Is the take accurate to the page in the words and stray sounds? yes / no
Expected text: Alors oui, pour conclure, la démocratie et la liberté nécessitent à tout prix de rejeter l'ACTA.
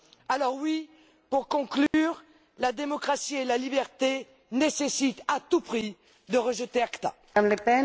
no